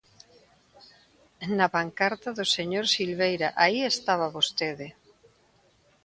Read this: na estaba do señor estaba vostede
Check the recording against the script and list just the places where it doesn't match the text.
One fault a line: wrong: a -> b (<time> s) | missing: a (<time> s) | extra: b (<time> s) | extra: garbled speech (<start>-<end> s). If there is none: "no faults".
wrong: estaba -> pancarta (1.7 s)
extra: silveira aí (2.9 s)